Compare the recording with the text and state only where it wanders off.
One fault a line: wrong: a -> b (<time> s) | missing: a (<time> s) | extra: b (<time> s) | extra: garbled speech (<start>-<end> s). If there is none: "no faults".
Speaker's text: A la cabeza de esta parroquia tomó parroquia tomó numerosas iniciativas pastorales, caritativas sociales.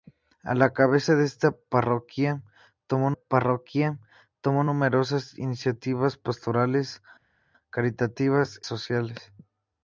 no faults